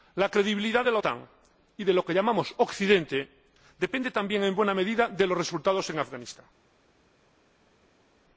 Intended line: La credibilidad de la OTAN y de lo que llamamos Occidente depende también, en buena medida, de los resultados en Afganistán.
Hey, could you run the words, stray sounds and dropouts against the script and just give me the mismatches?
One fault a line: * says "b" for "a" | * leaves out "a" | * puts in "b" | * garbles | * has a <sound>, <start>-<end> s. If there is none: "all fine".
all fine